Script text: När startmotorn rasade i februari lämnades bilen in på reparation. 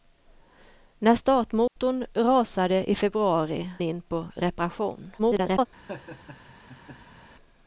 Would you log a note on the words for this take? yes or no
yes